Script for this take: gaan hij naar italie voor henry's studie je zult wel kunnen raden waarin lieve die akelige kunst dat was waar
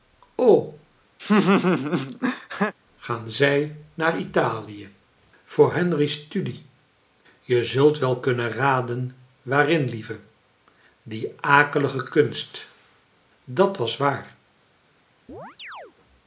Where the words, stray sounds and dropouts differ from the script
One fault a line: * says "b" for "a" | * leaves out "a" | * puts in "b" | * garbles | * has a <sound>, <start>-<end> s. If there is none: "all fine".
* has a laugh, 1.2-2.7 s
* says "zij" for "hij"
* has a chirp, 15.3-15.9 s